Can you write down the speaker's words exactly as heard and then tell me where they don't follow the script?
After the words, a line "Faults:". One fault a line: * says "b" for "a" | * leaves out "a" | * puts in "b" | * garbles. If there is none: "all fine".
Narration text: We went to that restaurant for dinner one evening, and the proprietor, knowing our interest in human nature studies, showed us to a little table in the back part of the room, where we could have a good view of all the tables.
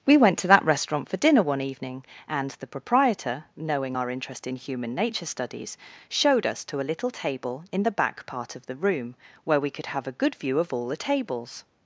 We went to that restaurant for dinner one evening, and the proprietor, knowing our interest in human nature studies, showed us to a little table in the back part of the room, where we could have a good view of all the tables.
Faults:
all fine